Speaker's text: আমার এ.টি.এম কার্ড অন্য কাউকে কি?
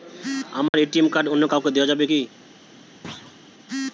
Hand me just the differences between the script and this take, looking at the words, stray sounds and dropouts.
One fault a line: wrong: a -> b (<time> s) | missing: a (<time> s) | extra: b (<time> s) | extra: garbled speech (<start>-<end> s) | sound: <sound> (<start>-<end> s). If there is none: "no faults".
sound: dropout (0.7-0.7 s)
extra: দেওয়া যাবে (1.7 s)
sound: thud (3.0-3.4 s)